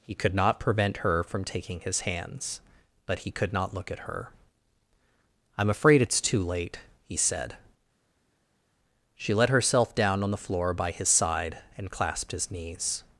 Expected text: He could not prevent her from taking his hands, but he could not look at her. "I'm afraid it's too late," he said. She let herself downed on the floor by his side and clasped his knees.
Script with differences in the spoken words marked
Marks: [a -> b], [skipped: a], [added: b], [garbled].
He could not prevent her from taking his hands, but he could not look at her. "I'm afraid it's too late," he said. She let herself [downed -> down] on the floor by his side and clasped his knees.